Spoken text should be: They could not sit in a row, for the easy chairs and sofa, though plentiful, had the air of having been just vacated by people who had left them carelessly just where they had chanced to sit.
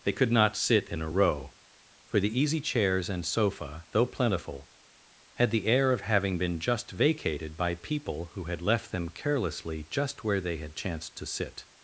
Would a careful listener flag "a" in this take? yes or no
no